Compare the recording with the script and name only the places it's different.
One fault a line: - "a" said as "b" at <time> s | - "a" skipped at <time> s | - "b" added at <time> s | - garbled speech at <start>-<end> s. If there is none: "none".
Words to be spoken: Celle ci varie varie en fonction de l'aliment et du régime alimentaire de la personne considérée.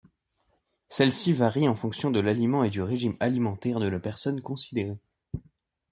- "varie" skipped at 1.7 s